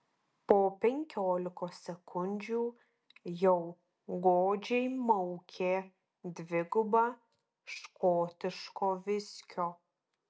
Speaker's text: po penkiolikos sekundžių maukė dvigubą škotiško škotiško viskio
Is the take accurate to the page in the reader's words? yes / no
no